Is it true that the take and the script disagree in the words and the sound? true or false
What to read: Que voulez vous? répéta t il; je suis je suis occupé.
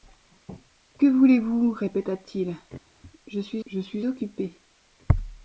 false